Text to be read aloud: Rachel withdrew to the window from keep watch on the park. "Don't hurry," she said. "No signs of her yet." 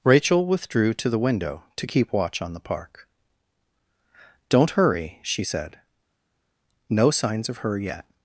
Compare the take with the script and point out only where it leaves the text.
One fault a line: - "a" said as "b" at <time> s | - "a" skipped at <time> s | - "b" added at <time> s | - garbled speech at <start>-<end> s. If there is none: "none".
- "from" said as "to" at 1.8 s